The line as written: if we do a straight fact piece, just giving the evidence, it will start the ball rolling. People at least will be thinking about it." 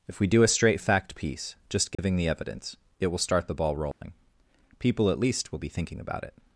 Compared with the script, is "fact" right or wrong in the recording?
right